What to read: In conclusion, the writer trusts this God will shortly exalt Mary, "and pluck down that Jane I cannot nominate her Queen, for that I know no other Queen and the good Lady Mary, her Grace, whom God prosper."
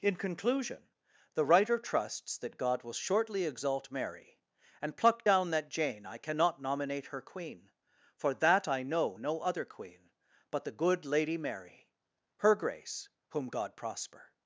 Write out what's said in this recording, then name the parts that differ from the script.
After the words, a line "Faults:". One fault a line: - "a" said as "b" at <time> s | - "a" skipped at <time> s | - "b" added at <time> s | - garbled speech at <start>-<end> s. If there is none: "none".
In conclusion, the writer trusts that God will shortly exalt Mary, "and pluck down that Jane I cannot nominate her Queen, for that I know no other Queen but the good Lady Mary, her Grace, whom God prosper."
Faults:
- "this" said as "that" at 2.4 s
- "and" said as "but" at 10.5 s